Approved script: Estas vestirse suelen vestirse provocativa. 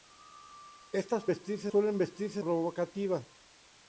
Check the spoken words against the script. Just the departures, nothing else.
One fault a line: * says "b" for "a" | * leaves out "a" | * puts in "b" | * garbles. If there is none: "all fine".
all fine